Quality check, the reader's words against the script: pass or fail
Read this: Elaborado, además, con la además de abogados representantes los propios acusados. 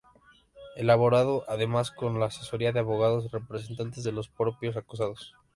fail